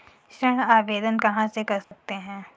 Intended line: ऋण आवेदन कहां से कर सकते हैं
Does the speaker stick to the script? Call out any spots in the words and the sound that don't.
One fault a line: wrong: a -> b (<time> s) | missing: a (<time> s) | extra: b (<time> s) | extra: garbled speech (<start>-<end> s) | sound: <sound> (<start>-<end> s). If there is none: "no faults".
sound: dropout (1.8-1.9 s)